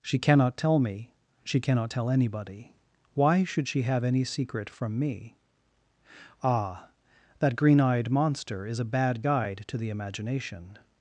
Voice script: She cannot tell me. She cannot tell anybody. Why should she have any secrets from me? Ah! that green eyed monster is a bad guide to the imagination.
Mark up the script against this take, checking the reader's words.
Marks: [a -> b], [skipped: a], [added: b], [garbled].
She cannot tell me. She cannot tell anybody. Why should she have any [secrets -> secret] from me? Ah! that green eyed monster is a bad guide to the imagination.